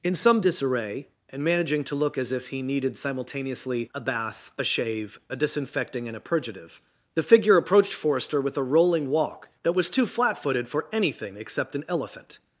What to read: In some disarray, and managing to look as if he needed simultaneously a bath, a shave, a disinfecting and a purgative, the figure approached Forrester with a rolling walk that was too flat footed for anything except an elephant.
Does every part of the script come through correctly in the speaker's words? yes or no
yes